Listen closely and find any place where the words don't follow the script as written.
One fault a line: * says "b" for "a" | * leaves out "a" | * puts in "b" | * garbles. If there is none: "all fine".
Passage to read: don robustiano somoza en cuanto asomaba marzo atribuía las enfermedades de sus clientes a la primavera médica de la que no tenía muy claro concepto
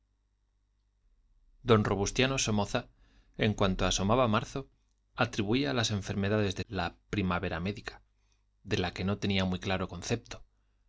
* leaves out "sus clientes a"